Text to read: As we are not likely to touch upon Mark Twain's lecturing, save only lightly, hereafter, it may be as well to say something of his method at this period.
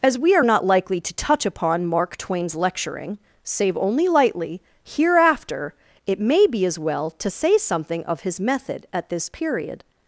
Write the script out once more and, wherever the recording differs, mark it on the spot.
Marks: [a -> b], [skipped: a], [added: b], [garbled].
As we are not likely to touch upon Mark Twain's lecturing, save only lightly, hereafter, it may be as well to say something of his method at this period.